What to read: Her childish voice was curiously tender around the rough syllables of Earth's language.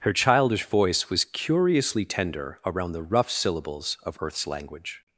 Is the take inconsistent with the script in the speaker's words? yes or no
no